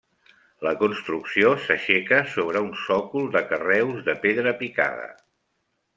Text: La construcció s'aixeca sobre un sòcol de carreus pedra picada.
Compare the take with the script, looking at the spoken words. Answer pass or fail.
fail